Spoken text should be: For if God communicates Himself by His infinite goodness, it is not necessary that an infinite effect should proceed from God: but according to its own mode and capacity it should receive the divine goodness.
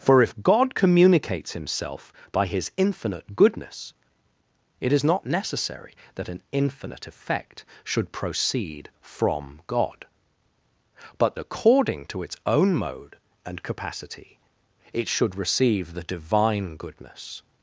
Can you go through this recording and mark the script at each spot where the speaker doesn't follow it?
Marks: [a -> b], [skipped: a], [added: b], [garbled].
For if God communicates Himself by His infinite goodness, it is not necessary that an infinite effect should proceed from God: but according to its own mode and capacity it should receive the divine goodness.